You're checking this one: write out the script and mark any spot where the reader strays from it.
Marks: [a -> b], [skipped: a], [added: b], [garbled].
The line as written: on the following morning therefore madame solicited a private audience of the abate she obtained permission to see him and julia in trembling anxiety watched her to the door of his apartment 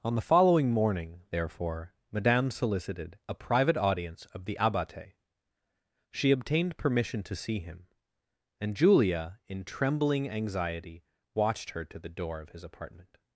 on the following morning therefore madame solicited a private audience of the abate she obtained permission to see him and julia in trembling anxiety watched her to the door of his apartment